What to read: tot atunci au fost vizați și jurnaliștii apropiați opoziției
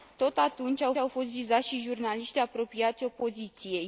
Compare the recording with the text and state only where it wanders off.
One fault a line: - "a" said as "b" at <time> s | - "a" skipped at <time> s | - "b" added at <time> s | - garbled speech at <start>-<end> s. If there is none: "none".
- "au" added at 1.0 s